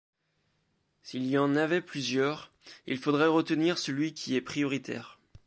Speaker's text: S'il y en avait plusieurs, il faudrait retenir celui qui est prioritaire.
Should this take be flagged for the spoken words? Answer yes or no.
no